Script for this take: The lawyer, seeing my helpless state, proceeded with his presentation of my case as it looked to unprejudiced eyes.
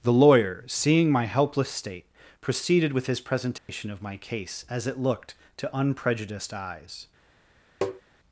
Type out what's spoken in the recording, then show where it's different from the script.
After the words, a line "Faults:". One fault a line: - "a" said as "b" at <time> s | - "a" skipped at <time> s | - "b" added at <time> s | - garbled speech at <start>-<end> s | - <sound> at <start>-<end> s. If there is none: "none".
The lawyer, seeing my helpless state, proceeded with his presentation of my case as it looked to unprejudiced eyes.
Faults:
- dropout at 3.6-3.7 s
- tap at 7.8-8.0 s